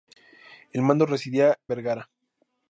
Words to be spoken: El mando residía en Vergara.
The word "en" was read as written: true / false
false